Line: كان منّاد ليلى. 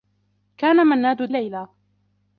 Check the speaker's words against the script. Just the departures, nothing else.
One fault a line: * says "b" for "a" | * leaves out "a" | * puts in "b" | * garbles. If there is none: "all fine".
all fine